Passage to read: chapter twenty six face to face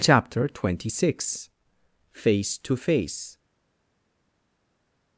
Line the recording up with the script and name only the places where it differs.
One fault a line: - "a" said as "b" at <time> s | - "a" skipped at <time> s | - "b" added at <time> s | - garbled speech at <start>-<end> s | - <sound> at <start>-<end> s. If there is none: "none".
none